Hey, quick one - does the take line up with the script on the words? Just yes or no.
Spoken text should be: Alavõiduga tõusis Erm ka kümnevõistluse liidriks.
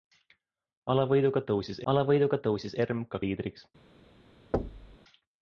no